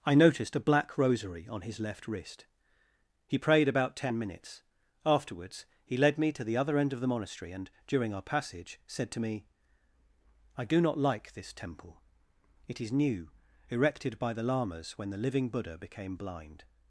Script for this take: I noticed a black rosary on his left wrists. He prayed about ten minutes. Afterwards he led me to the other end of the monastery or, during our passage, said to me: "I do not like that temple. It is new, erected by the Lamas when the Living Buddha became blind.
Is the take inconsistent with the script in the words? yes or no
yes